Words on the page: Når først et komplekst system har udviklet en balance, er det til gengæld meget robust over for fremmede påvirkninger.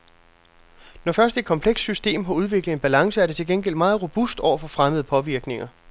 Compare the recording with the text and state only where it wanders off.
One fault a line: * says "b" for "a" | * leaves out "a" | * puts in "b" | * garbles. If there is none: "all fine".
all fine